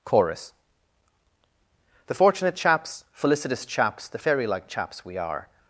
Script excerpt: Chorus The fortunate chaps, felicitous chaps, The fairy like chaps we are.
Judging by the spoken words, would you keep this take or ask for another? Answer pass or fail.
pass